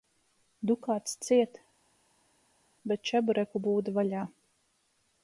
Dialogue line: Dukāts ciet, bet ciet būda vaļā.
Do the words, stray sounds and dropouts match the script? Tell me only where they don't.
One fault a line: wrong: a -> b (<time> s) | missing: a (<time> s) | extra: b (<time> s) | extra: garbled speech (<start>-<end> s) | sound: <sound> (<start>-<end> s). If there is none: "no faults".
wrong: ciet -> čebureku (3.1 s)